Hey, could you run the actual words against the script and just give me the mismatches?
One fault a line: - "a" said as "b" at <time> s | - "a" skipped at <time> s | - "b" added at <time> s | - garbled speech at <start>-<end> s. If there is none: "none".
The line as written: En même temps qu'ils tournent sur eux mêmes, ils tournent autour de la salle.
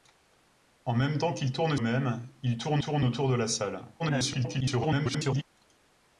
- "sur" skipped at 1.8 s
- "tournent" added at 2.8 s
- garbled speech at 4.0-5.4 s